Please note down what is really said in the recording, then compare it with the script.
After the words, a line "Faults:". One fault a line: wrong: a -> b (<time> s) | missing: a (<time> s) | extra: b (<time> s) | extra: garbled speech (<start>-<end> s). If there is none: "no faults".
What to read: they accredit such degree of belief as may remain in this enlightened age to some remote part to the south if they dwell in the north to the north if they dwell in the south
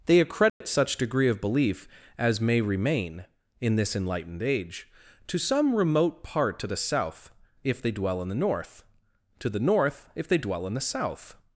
they accredit such degree of belief as may remain in this enlightened age to some remote part to the south if they dwell in the north to the north if they dwell in the south
Faults:
no faults